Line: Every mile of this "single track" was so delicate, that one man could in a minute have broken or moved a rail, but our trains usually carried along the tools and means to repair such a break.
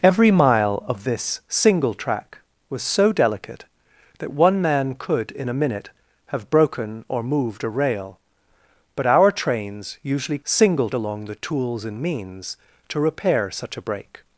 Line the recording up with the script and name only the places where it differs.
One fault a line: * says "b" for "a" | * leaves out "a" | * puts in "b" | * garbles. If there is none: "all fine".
* says "single" for "carried"